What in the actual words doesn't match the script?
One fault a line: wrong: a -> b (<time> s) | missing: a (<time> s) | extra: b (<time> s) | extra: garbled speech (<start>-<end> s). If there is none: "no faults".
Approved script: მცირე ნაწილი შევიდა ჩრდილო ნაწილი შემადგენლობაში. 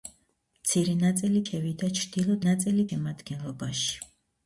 no faults